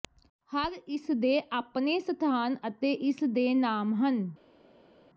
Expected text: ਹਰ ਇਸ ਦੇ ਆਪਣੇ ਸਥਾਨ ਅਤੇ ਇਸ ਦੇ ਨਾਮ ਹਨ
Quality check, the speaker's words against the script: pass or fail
pass